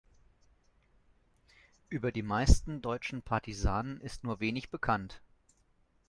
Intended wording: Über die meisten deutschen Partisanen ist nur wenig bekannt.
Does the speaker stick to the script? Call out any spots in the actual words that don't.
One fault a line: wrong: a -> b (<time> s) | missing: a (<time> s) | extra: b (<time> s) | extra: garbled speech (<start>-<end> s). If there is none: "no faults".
no faults